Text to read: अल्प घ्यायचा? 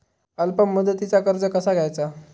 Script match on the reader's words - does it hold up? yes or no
no